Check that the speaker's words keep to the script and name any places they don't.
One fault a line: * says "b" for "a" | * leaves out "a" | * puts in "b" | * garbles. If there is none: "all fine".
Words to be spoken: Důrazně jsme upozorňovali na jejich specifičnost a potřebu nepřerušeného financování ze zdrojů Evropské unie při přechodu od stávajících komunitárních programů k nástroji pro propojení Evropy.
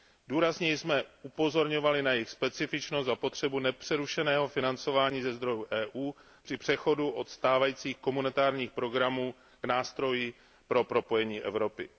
all fine